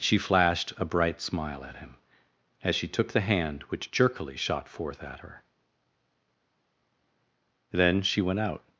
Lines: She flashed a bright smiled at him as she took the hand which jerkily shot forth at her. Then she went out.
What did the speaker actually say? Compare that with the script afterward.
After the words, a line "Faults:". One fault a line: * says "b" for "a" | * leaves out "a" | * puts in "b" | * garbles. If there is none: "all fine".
She flashed a bright smile at him as she took the hand which jerkily shot forth at her. Then she went out.
Faults:
* says "smile" for "smiled"